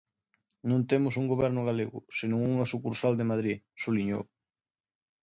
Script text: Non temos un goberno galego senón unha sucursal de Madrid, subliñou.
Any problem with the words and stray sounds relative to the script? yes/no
no